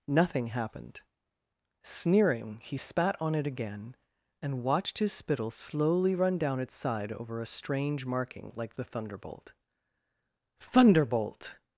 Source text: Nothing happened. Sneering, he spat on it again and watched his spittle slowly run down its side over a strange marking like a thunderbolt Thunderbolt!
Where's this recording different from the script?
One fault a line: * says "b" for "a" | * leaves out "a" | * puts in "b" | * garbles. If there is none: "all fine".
* says "the" for "a"